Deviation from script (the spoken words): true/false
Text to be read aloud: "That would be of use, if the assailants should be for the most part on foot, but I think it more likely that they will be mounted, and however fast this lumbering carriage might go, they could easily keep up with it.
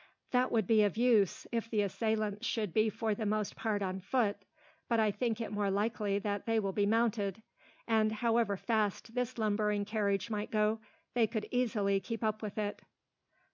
false